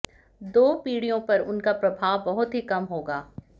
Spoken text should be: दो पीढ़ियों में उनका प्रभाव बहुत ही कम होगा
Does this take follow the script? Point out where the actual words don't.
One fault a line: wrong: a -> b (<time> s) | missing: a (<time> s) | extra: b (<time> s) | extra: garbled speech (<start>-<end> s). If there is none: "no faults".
wrong: में -> पर (1.2 s)